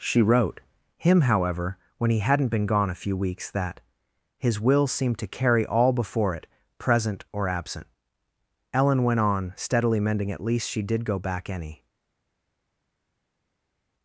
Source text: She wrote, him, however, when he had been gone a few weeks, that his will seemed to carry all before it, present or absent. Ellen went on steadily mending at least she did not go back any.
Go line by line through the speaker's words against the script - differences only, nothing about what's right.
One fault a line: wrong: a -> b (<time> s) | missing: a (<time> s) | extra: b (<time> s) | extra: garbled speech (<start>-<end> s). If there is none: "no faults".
wrong: had -> hadn't (2.2 s)
missing: not (11.1 s)